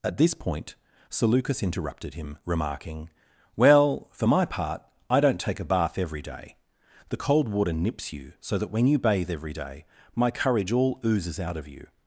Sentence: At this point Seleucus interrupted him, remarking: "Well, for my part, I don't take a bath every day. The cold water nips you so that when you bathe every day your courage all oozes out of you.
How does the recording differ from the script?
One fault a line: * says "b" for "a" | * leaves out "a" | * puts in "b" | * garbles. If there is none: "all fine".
* says "my" for "your"